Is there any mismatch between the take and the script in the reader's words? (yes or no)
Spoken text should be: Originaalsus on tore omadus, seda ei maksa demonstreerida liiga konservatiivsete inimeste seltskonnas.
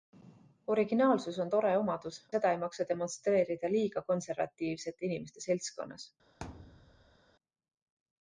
no